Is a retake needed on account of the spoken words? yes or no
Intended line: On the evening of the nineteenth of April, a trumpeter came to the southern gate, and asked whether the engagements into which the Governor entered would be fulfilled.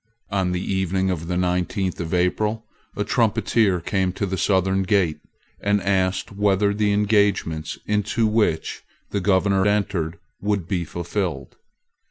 no